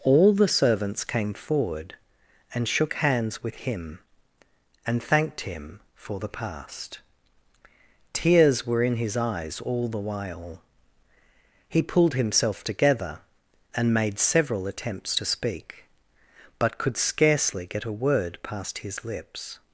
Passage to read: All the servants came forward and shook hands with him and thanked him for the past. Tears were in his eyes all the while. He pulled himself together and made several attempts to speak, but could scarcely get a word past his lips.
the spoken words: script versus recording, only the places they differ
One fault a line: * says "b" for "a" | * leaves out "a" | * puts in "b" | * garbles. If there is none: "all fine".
all fine